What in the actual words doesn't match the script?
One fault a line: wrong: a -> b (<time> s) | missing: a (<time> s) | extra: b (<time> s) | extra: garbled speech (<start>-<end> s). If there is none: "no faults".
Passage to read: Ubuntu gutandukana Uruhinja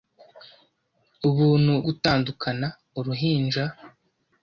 no faults